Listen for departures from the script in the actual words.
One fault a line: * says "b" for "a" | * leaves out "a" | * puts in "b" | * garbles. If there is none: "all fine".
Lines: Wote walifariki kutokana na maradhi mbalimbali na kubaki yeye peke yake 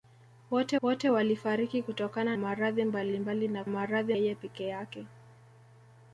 * puts in "wote"
* leaves out "na"
* says "maradhi" for "kubaki"